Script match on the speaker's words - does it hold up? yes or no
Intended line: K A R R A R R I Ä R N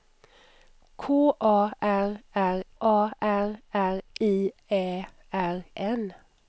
yes